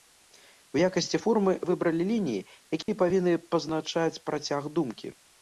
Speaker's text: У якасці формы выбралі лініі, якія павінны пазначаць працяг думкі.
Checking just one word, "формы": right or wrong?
right